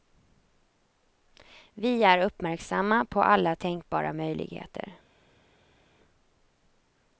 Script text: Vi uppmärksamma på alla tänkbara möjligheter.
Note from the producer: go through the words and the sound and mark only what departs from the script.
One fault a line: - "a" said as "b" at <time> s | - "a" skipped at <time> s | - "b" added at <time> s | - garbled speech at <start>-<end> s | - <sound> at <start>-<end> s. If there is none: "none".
- "är" added at 2.0 s